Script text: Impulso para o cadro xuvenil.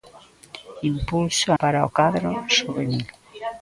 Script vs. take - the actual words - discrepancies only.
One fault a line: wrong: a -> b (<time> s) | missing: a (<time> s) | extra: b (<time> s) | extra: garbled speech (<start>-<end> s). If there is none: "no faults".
no faults